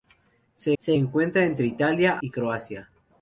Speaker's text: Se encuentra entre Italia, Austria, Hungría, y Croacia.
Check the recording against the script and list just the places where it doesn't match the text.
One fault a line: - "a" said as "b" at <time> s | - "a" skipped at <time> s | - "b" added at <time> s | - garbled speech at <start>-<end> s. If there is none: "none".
- "se" added at 0.8 s
- "Austria Hungría" skipped at 2.2 s